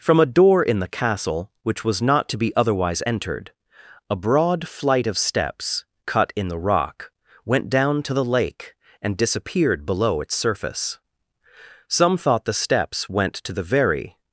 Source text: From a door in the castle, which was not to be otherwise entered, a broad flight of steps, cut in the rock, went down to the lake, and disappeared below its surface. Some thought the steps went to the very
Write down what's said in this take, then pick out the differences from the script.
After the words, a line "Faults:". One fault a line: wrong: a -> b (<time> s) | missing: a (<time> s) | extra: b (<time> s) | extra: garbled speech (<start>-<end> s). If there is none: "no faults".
From a door in the castle, which was not to be otherwise entered, a broad flight of steps, cut in the rock, went down to the lake, and disappeared below its surface. Some thought the steps went to the very
Faults:
no faults